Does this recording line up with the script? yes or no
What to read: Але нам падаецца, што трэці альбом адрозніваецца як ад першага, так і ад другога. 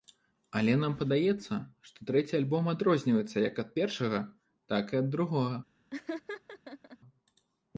yes